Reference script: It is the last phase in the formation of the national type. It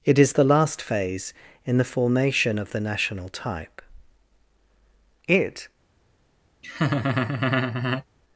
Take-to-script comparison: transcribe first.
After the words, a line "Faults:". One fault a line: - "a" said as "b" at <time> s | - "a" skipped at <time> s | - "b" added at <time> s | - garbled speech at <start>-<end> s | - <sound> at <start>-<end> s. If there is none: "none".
It is the last phase in the formation of the national type. It
Faults:
- laugh at 6.6-8.0 s